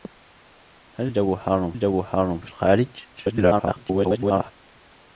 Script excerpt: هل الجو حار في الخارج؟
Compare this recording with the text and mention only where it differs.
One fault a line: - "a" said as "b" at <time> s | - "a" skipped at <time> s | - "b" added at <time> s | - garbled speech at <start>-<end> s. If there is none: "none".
- "الجو حار" added at 1.7 s
- garbled speech at 3.1-4.5 s